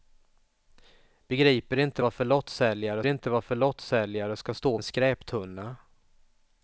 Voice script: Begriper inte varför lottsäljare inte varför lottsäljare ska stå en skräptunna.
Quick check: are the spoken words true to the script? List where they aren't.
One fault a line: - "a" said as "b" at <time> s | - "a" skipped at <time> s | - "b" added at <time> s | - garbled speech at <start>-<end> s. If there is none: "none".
none